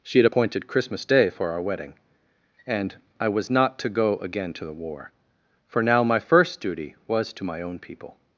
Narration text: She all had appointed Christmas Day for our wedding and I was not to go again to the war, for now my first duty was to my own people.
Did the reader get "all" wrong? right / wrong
wrong